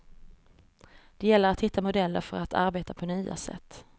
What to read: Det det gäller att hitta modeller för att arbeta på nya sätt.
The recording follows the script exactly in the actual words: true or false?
false